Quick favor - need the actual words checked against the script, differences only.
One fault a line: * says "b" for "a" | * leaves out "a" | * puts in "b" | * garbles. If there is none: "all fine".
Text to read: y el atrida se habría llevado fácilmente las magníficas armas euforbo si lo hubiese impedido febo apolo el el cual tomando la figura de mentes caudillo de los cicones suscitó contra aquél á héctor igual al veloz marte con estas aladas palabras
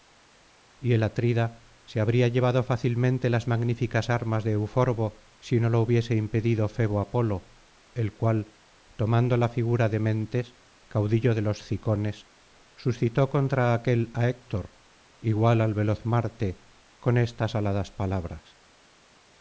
* puts in "de"
* puts in "no"
* leaves out "el"